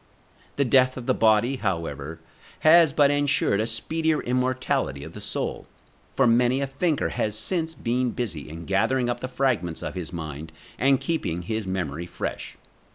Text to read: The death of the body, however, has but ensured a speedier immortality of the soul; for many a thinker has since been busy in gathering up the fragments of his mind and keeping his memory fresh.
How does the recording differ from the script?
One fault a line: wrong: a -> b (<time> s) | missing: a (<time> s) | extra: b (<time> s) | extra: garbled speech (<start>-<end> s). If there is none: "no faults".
no faults